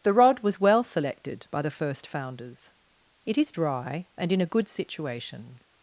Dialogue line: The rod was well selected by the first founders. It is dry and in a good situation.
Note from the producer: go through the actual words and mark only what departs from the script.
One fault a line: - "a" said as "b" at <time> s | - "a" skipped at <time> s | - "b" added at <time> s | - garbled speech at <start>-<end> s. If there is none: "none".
none